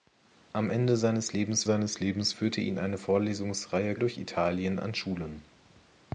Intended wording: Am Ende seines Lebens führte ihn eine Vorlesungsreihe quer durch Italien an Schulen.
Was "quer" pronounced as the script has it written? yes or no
no